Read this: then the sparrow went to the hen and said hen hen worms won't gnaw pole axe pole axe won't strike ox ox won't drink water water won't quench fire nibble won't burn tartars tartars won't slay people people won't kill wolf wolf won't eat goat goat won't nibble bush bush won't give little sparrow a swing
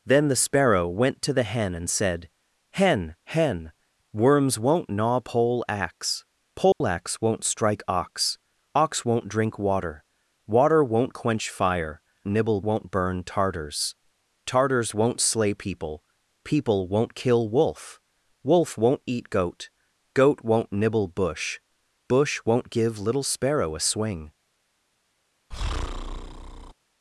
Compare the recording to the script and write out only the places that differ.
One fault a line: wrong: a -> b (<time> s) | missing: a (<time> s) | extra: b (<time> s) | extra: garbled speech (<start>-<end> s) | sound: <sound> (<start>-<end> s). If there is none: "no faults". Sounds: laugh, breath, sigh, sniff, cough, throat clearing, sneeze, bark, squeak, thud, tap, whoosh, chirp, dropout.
sound: dropout (6.7-6.8 s)
sound: breath (25.5-26.7 s)